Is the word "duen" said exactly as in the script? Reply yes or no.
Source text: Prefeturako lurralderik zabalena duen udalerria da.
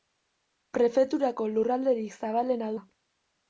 no